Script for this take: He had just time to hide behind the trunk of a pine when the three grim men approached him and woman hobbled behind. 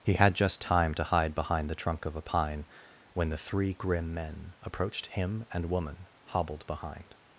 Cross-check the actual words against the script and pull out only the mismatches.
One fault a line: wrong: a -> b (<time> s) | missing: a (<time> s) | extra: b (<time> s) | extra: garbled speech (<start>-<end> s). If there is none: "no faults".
no faults